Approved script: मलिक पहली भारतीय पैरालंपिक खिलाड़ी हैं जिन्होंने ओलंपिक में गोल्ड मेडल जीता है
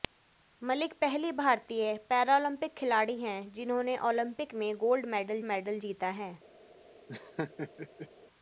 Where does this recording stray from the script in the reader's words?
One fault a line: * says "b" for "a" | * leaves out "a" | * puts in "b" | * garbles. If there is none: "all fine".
* puts in "मेडल"